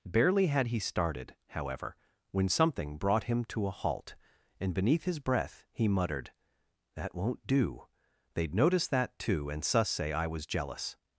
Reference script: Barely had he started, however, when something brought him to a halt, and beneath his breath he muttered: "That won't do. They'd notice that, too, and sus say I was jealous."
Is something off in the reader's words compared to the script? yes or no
no